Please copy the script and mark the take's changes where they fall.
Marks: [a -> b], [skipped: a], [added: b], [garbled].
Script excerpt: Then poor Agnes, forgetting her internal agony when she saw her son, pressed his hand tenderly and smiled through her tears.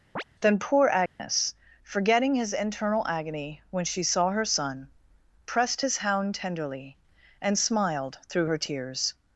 Then poor Agnes, forgetting [her -> his] internal agony when she saw her son, pressed his [hand -> hound] tenderly and smiled through her tears.